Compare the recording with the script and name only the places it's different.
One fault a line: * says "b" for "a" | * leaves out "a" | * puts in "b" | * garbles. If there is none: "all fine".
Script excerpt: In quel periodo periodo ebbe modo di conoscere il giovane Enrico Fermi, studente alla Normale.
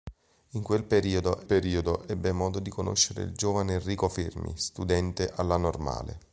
all fine